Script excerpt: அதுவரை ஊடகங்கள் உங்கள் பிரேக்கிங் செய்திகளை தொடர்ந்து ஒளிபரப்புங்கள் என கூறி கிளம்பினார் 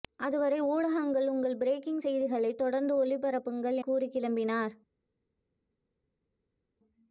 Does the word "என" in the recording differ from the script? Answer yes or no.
yes